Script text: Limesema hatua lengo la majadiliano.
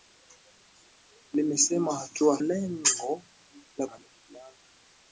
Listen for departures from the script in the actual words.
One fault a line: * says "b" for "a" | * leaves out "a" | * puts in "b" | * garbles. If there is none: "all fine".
all fine